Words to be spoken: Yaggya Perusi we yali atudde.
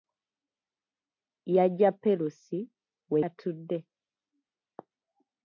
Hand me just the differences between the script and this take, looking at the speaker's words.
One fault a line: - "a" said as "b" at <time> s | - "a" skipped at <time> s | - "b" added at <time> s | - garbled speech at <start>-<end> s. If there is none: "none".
- "yali" skipped at 3.2 s